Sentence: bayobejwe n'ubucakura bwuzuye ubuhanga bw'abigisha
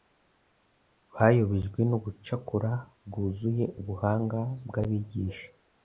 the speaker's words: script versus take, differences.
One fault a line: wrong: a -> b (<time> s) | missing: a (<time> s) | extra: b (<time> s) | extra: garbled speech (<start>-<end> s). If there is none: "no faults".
no faults